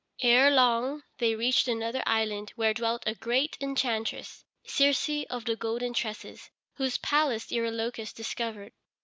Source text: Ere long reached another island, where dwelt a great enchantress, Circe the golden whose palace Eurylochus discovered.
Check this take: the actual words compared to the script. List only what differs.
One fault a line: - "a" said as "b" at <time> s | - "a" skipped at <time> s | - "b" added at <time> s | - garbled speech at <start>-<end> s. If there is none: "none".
- "they" added at 1.2 s
- "of" added at 5.3 s
- "tresses" added at 5.9 s